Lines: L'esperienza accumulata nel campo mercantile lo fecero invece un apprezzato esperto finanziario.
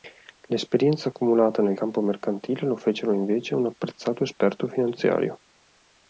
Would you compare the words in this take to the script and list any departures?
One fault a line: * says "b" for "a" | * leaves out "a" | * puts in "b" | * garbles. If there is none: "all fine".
all fine